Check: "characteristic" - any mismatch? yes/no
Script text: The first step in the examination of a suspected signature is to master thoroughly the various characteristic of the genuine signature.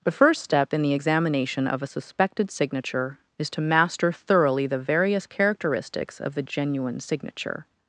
yes